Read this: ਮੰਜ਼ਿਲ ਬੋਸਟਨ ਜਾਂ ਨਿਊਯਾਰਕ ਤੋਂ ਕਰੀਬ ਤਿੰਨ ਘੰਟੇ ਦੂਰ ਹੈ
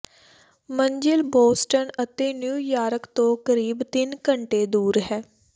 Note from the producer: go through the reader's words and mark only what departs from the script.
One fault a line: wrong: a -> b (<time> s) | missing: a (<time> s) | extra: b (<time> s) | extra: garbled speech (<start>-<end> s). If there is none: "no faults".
wrong: ਜਾਂ -> ਅਤੇ (2.0 s)